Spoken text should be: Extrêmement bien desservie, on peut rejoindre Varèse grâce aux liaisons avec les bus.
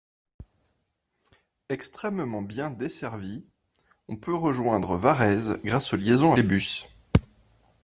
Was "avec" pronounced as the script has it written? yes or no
no